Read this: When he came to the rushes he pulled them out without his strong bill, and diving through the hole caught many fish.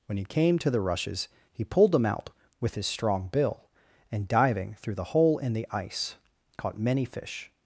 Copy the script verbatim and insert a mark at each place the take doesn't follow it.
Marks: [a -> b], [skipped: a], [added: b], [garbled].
When he came to the rushes he pulled them out [without -> with] his strong bill, and diving through the hole [added: in the ice] caught many fish.